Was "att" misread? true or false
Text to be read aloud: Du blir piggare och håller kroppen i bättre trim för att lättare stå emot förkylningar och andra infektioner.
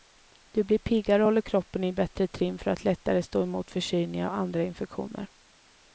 false